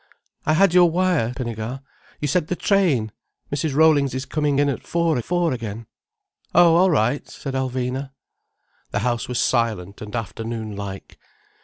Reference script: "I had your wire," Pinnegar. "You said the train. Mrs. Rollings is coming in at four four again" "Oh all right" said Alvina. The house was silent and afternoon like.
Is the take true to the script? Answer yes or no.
yes